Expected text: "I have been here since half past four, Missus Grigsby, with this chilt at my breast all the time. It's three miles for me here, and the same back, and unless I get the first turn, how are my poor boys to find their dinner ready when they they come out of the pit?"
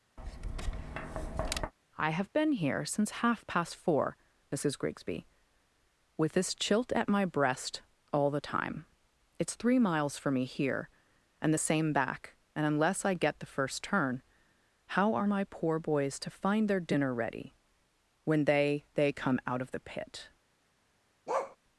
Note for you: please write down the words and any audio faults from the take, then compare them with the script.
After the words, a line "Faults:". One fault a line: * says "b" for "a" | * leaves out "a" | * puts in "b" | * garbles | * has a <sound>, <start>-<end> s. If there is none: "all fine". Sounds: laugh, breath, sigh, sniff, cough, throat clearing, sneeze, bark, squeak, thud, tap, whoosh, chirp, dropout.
"I have been here since half past four, Missus Grigsby, with this chilt at my breast all the time. It's three miles for me here, and the same back, and unless I get the first turn, how are my poor boys to find their dinner ready when they they come out of the pit?"
Faults:
* has a tap, 0.2-1.7 s
* has a bark, 21.3-21.6 s